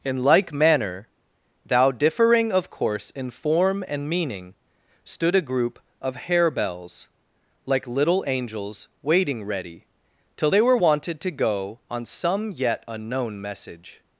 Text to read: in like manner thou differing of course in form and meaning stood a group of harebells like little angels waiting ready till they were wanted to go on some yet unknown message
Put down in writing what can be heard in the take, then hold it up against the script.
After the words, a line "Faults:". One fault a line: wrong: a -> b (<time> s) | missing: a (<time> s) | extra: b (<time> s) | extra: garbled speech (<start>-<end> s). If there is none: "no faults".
in like manner thou differing of course in form and meaning stood a group of harebells like little angels waiting ready till they were wanted to go on some yet unknown message
Faults:
no faults